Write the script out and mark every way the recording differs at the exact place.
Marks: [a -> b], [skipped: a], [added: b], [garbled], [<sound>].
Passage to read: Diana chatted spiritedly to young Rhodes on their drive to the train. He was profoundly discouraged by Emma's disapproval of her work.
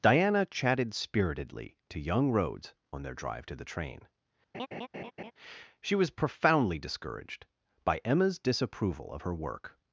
Diana chatted spiritedly to young Rhodes on their drive to the train. [laugh] [He -> She] was profoundly discouraged by Emma's disapproval of her work.